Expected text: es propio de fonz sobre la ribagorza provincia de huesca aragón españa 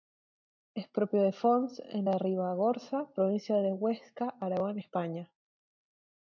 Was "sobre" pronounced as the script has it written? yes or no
no